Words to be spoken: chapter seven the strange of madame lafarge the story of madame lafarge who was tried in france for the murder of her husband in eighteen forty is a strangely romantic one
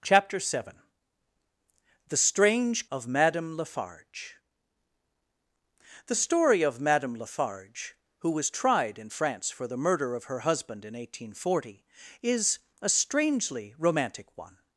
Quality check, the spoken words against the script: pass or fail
pass